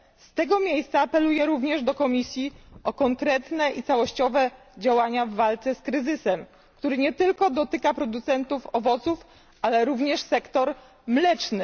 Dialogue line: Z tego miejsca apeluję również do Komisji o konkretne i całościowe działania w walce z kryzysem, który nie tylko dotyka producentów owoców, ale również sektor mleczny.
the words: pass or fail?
pass